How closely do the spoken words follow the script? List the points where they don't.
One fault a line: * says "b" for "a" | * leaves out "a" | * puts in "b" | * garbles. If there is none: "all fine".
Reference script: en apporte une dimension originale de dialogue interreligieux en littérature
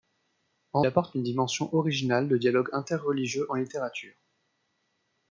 all fine